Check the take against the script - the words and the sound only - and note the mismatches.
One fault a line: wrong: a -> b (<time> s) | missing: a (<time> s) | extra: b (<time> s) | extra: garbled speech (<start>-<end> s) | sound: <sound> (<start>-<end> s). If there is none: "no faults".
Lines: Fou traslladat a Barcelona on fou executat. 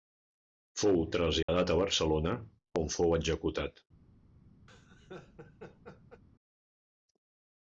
sound: dropout (1.4-1.5 s)
sound: laugh (4.7-6.2 s)